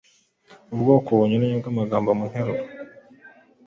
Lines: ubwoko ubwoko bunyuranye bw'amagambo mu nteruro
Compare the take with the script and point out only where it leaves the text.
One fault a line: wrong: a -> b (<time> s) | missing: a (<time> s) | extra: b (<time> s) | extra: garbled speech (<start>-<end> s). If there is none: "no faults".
missing: ubwoko (1.1 s)